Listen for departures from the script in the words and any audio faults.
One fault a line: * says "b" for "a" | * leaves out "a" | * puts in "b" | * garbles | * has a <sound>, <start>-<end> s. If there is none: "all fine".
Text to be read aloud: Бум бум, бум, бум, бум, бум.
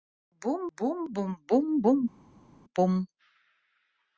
all fine